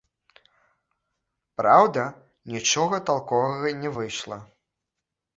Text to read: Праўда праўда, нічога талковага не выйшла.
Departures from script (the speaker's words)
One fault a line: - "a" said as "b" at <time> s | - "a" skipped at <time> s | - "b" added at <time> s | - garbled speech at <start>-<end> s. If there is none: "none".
- "праўда" skipped at 2.0 s